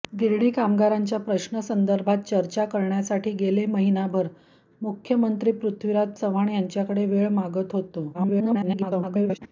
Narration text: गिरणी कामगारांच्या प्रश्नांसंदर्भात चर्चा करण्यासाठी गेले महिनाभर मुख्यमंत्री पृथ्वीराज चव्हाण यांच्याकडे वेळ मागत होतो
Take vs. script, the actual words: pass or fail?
fail